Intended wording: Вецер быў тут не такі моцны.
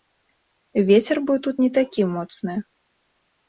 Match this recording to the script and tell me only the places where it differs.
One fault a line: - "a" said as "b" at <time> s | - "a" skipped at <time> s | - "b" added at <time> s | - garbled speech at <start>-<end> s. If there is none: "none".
none